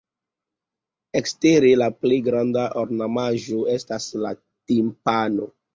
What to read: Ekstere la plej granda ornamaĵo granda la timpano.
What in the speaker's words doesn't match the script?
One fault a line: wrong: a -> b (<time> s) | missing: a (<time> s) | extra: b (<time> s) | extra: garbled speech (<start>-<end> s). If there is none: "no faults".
wrong: granda -> estas (3.8 s)